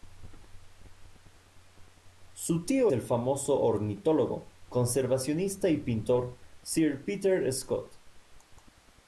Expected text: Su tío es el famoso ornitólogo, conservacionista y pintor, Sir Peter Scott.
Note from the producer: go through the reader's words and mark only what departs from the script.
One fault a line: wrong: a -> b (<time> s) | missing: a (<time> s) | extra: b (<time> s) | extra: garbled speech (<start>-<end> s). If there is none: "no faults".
missing: es (2.9 s)